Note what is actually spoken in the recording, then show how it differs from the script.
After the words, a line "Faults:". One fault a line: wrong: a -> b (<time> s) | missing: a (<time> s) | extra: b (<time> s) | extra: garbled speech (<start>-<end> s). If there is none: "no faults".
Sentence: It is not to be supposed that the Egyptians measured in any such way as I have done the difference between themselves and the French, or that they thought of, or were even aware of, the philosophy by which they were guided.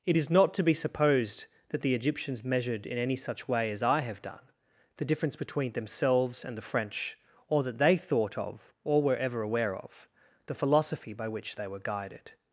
It is not to be supposed that the Egyptians measured in any such way as I have done the difference between themselves and the French, or that they thought of, or were ever aware of, the philosophy by which they were guided.
Faults:
wrong: even -> ever (9.1 s)